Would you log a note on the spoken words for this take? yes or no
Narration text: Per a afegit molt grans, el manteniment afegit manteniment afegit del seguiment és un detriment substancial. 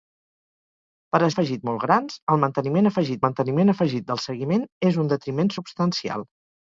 no